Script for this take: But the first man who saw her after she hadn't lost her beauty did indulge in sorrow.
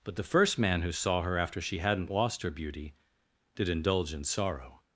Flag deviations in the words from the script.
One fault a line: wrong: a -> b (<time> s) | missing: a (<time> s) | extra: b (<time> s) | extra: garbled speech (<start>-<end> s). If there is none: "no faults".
no faults